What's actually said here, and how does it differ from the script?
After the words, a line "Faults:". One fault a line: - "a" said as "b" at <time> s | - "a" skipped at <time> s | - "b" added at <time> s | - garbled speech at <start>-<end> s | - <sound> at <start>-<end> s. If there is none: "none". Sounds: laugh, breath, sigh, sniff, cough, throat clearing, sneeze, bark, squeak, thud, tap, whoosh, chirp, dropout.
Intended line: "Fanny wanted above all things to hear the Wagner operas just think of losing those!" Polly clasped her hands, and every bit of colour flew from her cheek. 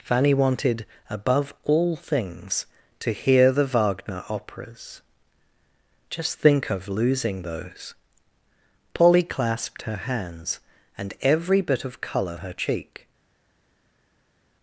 "Fanny wanted above all things to hear the Wagner operas just think of losing those!" Polly clasped her hands, and every bit of colour her cheek.
Faults:
- "flew from" skipped at 12.4 s